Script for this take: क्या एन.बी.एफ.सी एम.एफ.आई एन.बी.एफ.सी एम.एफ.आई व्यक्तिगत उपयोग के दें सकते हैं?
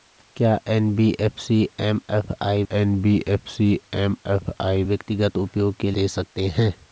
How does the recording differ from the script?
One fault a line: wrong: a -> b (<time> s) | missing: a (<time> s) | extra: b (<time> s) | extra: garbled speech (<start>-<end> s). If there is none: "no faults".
no faults